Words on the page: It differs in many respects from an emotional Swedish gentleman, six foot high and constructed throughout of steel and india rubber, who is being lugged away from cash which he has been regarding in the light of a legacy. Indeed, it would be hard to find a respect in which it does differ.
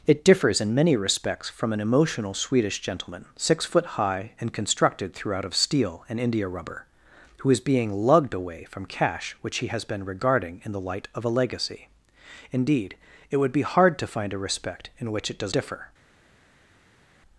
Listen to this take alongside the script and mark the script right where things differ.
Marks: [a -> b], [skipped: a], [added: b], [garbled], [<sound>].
It differs in many respects from an emotional Swedish gentleman, six foot high and constructed throughout of steel and india rubber, who is being lugged away from cash which he has been regarding in the light of a legacy. Indeed, it would be hard to find a respect in which it does differ.